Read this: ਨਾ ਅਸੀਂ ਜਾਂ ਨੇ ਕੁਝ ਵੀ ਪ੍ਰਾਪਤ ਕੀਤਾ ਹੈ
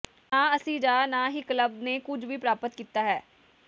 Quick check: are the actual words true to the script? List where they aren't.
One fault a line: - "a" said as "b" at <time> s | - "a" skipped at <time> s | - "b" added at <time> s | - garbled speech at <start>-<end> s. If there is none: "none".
- "ਨਾ ਹੀ ਕਲੱਬ" added at 1.1 s